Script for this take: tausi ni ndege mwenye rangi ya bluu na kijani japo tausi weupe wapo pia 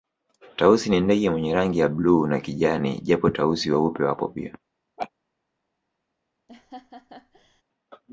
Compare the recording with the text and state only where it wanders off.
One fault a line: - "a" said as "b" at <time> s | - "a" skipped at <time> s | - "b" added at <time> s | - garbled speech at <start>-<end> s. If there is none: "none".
none